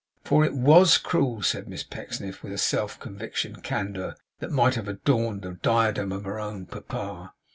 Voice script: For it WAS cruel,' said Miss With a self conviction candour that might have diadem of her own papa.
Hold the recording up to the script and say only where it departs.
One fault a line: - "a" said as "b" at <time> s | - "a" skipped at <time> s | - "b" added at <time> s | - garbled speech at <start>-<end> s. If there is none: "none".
- "Pecksniff" added at 1.8 s
- "adorned the" added at 4.9 s